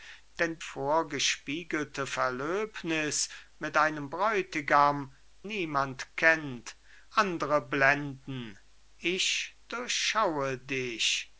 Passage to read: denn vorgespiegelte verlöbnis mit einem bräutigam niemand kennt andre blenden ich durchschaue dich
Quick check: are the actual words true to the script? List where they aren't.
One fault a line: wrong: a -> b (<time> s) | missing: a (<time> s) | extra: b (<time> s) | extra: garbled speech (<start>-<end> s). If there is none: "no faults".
no faults